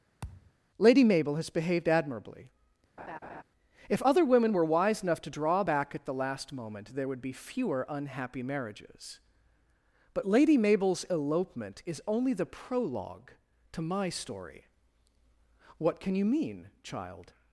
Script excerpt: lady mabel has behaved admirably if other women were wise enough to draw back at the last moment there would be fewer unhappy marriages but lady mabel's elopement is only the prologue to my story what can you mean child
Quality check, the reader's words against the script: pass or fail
pass